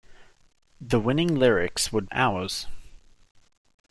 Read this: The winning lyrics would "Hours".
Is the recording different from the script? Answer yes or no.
no